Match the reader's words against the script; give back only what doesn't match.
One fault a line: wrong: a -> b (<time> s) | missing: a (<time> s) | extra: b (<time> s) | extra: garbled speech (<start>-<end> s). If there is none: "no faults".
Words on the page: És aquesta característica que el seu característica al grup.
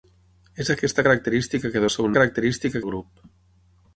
no faults